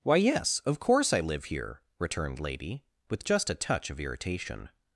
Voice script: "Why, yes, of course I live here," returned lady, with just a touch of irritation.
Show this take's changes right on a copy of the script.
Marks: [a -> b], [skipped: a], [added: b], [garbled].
"Why, yes, of course I live here," returned lady, with just a touch of irritation.